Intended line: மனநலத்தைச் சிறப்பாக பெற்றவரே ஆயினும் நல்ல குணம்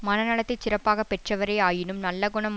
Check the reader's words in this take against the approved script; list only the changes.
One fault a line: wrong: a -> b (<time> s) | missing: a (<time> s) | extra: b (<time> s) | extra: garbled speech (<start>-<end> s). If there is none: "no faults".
no faults